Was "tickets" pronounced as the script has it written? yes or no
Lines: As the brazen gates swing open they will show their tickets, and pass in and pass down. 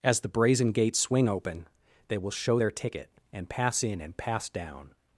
no